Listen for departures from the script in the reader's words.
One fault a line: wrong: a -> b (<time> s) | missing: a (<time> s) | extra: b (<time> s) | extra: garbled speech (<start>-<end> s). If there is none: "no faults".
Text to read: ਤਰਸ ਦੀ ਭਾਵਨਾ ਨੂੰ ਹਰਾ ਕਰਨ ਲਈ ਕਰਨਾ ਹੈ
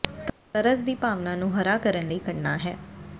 no faults